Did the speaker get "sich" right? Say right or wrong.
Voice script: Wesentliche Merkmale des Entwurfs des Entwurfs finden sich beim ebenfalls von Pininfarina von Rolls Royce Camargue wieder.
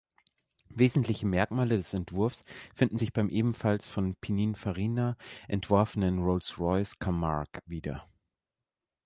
right